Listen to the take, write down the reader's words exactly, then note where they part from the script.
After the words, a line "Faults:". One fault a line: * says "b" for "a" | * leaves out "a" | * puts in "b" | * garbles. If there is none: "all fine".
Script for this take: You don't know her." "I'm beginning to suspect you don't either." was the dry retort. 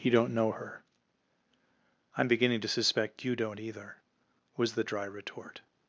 You don't know her." "I'm beginning to suspect you don't either." was the dry retort.
Faults:
all fine